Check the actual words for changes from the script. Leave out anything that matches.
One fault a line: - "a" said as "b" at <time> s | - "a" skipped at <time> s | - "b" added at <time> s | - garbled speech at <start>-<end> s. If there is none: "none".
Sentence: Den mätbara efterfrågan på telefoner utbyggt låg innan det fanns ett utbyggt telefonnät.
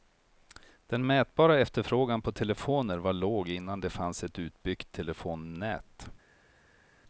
- "utbyggt" said as "var" at 3.0 s